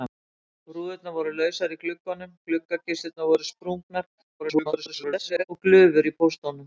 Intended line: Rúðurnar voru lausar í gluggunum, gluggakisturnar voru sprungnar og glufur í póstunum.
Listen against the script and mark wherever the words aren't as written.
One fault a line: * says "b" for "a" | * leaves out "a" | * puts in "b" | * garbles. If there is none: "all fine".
* garbles